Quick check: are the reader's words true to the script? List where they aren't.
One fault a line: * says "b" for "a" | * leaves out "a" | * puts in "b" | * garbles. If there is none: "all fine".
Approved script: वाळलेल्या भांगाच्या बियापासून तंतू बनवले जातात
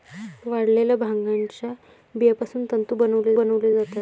* puts in "बनवले"